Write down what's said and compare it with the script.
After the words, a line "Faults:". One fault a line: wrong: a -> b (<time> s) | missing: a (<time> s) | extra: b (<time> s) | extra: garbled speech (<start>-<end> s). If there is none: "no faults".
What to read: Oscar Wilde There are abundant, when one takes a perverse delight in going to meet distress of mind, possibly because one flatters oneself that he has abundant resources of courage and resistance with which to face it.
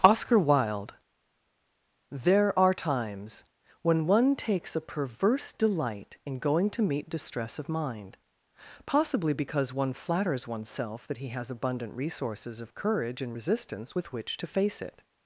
Oscar Wilde There are times, when one takes a perverse delight in going to meet distress of mind, possibly because one flatters oneself that he has abundant resources of courage and resistance with which to face it.
Faults:
wrong: abundant -> times (2.7 s)